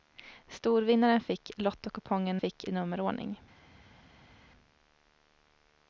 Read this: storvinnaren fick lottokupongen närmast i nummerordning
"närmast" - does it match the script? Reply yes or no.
no